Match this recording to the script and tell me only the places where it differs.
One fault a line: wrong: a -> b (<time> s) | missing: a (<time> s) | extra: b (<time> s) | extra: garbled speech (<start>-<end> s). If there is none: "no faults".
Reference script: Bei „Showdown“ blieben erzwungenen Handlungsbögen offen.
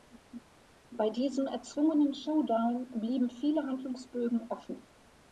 extra: diesem erzwungenen (1.1 s)
wrong: erzwungenen -> viele (3.3 s)